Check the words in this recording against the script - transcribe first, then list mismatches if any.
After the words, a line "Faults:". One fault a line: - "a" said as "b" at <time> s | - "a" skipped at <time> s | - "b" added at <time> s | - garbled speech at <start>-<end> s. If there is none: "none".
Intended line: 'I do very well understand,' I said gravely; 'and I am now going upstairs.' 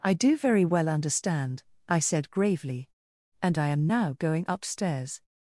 'I do very well understand,' I said gravely; 'and I am now going upstairs.'
Faults:
none